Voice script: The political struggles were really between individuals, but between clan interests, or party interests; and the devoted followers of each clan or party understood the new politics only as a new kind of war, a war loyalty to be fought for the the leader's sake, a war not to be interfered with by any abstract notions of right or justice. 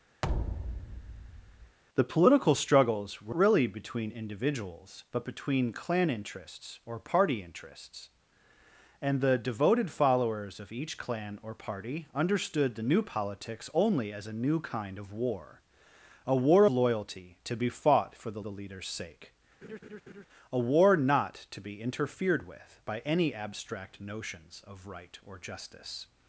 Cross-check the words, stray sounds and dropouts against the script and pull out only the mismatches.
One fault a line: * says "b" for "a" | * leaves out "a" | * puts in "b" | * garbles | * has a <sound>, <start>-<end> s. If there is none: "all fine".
* has a thud, 0.2-1.8 s
* has a laugh, 19.6-20.3 s